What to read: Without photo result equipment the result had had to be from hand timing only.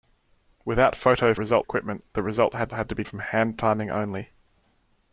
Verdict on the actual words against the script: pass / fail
pass